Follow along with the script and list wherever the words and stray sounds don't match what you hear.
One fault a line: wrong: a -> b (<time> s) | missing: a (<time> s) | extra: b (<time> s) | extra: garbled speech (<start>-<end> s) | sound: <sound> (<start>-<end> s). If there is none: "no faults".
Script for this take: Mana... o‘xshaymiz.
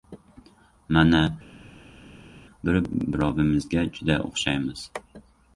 extra: bir birovimizga juda (2.7 s)